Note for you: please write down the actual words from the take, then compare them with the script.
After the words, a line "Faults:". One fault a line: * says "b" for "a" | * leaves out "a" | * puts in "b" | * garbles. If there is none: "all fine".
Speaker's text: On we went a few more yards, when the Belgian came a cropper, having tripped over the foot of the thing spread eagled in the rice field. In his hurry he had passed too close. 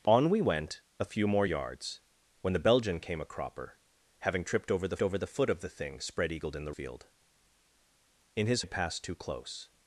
On we went a few more yards, when the Belgian came a cropper, having tripped over the over the foot of the thing spread eagled in the field. In his had passed too close.
Faults:
* puts in "over the"
* leaves out "rice"
* leaves out "hurry he"